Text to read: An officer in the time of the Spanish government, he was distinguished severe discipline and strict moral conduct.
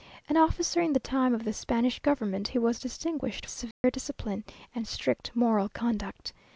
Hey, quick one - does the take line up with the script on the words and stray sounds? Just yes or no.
no